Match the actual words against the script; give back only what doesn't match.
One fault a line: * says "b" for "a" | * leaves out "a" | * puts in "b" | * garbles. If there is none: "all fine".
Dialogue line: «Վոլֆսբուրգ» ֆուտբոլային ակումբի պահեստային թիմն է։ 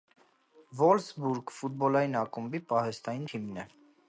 all fine